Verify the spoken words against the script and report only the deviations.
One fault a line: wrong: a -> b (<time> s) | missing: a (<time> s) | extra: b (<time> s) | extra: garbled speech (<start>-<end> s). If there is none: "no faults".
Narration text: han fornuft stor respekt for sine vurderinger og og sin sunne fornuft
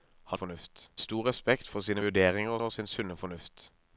no faults